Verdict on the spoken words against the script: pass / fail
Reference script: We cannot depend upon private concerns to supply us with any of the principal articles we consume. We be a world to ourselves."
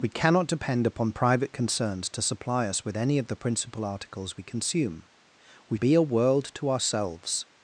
pass